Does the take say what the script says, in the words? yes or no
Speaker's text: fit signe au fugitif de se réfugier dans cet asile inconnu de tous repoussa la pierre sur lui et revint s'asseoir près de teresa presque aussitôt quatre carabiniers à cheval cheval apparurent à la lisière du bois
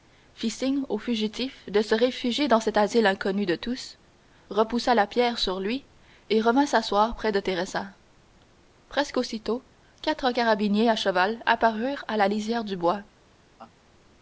no